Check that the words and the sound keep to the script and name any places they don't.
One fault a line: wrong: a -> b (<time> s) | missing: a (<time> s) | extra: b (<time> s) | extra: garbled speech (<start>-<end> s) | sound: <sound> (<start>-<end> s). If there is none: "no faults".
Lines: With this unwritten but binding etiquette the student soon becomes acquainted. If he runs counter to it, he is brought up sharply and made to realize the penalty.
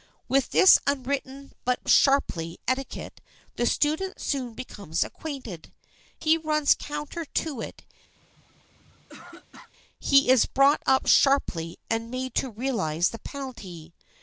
wrong: binding -> sharply (1.9 s)
missing: If (5.7 s)
sound: throat clearing (8.2-9.7 s)